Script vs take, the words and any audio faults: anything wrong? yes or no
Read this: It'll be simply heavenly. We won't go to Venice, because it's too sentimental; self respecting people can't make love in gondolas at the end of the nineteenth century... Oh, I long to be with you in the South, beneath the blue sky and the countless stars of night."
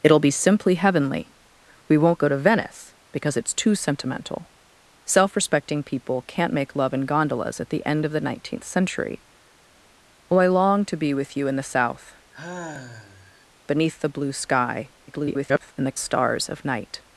yes